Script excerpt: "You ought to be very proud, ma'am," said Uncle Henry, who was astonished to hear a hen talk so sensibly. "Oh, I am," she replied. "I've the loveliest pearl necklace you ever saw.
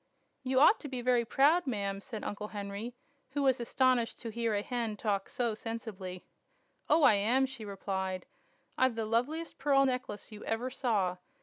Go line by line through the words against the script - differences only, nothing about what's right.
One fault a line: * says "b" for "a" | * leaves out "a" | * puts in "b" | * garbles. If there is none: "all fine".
all fine